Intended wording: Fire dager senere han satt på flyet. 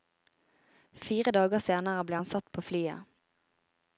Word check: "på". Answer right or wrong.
right